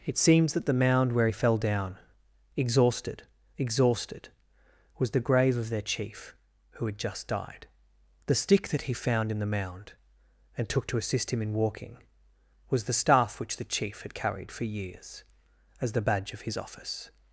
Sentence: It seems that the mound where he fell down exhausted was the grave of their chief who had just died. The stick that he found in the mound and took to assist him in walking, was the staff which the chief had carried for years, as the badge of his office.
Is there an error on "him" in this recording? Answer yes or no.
no